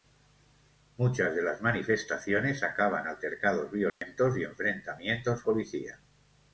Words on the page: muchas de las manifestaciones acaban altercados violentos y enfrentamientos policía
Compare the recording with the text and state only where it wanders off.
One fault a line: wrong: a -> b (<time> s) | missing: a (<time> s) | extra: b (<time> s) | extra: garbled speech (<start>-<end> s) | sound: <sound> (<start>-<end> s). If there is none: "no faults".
sound: dropout (3.9-4.0 s)